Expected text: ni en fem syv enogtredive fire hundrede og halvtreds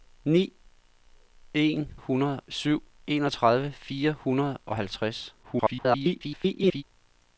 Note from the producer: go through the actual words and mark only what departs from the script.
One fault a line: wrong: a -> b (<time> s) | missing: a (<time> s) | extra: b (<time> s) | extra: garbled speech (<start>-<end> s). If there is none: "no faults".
wrong: fem -> hundrede (1.9 s)
extra: garbled speech (5.4-6.8 s)